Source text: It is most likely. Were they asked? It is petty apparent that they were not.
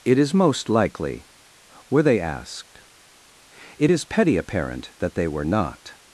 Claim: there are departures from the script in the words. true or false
false